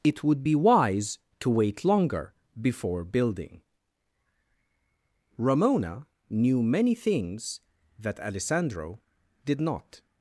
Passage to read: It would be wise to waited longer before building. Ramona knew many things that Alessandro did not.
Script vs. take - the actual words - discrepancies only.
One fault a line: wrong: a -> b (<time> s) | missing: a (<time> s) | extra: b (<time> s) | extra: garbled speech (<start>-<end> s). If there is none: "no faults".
wrong: waited -> wait (1.5 s)